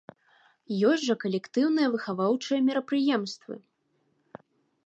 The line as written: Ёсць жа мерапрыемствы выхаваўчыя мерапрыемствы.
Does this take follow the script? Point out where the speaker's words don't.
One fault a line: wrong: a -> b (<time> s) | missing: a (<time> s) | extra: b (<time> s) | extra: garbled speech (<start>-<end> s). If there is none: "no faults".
wrong: мерапрыемствы -> калектыўныя (1.2 s)